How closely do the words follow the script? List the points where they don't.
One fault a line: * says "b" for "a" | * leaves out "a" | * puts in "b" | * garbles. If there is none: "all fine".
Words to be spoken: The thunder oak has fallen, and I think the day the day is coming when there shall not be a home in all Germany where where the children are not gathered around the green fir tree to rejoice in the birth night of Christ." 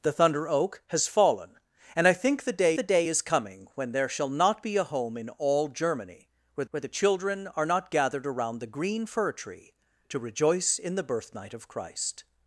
all fine